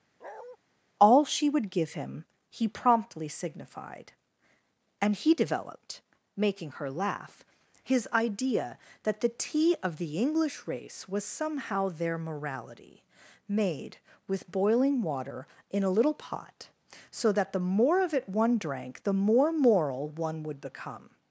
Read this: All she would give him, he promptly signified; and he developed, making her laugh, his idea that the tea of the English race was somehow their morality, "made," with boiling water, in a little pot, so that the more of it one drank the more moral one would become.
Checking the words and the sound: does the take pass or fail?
fail